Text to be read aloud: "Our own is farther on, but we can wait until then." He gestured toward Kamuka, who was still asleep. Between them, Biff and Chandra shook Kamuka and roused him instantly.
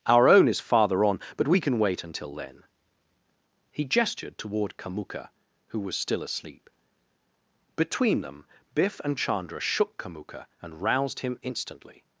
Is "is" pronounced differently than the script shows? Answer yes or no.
no